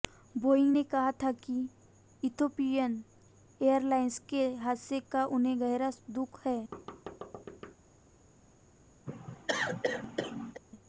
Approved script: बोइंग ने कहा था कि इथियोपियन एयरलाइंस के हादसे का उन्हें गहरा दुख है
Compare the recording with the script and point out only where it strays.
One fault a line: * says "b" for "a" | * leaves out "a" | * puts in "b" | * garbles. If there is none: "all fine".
all fine